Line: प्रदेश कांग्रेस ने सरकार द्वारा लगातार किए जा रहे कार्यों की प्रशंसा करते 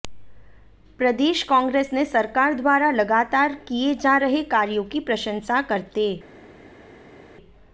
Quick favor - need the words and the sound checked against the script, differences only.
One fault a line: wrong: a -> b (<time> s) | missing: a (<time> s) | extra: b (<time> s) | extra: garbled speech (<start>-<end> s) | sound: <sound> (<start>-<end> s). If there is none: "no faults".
no faults